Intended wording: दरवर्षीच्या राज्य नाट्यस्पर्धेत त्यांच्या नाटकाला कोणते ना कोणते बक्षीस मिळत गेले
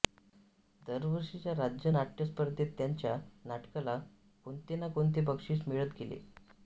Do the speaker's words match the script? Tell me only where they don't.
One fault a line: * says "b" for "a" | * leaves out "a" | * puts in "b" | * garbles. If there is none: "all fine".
all fine